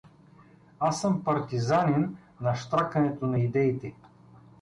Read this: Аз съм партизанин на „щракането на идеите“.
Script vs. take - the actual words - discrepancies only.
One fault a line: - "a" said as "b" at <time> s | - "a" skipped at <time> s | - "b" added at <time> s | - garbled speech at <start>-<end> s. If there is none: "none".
none